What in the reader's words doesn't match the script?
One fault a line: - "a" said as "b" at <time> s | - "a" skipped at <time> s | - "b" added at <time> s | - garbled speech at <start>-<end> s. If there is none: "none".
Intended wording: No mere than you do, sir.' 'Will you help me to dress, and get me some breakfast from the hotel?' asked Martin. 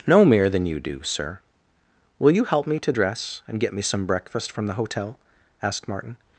none